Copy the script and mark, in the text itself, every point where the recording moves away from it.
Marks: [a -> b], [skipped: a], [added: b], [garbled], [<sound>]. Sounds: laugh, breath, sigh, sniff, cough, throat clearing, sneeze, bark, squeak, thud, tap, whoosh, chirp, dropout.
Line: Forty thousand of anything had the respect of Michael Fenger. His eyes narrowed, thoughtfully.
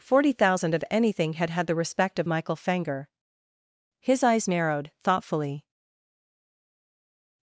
Forty thousand of anything had [added: had] the respect of Michael Fenger. His eyes narrowed, thoughtfully.